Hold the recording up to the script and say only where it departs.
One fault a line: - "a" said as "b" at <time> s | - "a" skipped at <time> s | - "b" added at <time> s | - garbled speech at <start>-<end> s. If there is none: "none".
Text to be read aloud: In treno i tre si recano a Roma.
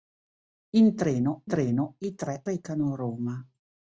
- "treno" added at 1.5 s
- "si" skipped at 2.4 s